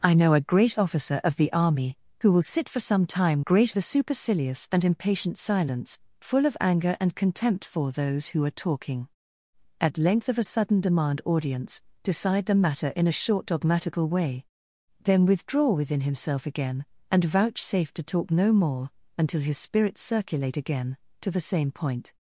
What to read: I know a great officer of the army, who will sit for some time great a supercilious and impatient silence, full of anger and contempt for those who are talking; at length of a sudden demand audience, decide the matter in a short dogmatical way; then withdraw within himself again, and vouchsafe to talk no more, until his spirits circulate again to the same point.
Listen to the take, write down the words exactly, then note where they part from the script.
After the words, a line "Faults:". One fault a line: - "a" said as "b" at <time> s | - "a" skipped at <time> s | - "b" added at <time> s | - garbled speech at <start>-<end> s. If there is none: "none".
I know a great officer of the army, who will sit for some time great a supercilious and impatient silence, full of anger and contempt for those who are talking; at length of a sudden demand audience, decide the matter in a short dogmatical way; then withdraw within himself again, and vouchsafe to talk no more, until his spirits circulate again to the same point.
Faults:
none